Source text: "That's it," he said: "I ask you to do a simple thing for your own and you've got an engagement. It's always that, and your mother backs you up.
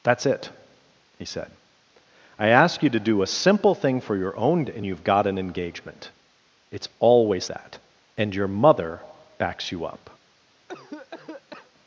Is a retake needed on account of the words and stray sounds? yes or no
yes